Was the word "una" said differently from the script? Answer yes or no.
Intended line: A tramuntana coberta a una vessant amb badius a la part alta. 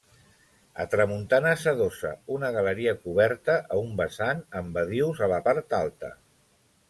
yes